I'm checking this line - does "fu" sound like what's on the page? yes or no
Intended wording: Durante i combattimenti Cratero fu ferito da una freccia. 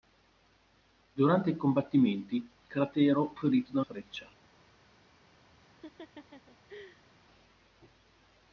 no